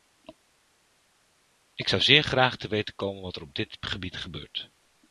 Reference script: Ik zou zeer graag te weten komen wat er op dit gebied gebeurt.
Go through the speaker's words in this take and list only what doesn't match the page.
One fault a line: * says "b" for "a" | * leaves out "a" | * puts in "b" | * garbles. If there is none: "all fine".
all fine